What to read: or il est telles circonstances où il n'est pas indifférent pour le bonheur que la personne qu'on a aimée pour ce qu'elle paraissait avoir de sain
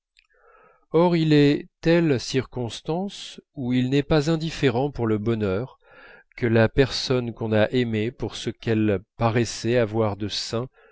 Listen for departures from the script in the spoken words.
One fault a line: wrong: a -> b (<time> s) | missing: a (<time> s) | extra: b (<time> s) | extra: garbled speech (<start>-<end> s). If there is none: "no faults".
no faults